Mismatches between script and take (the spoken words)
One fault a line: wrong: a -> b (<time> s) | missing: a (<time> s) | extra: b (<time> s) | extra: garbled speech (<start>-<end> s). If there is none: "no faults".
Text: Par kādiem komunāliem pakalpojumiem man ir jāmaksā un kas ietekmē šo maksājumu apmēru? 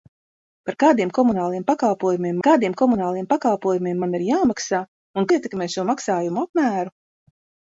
extra: kādiem komunāliem pakalpojumiem (2.5 s)
missing: kas (5.3 s)